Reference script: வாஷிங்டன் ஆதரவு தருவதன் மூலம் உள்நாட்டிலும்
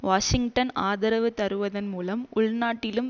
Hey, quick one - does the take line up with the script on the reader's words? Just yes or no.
yes